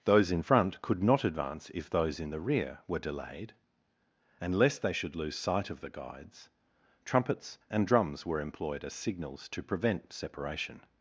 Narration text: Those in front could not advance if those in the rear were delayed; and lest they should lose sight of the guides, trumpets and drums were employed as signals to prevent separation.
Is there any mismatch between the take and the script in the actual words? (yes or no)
no